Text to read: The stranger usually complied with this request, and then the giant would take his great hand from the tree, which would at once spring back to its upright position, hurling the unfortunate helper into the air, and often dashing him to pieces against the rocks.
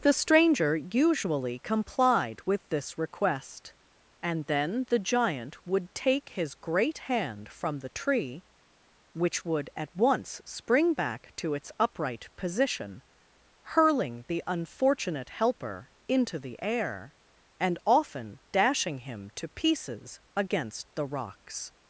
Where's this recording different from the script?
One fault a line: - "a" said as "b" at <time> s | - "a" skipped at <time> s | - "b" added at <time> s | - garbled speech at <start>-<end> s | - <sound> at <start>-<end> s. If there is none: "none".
none